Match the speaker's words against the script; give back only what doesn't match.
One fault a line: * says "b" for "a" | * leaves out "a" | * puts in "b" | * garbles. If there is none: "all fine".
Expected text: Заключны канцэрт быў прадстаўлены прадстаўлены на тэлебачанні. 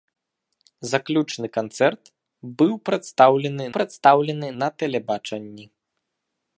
all fine